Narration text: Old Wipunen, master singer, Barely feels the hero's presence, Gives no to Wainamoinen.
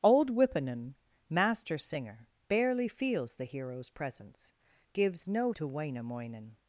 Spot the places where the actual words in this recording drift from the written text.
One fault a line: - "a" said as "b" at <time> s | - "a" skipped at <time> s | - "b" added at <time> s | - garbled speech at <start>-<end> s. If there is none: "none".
none